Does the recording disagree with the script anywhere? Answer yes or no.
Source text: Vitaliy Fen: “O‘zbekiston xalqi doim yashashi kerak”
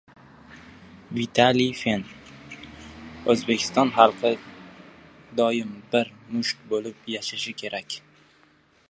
yes